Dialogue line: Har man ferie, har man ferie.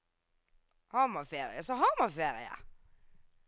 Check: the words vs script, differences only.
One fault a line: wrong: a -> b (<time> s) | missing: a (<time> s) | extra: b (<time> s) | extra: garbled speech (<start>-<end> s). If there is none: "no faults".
extra: så (1.6 s)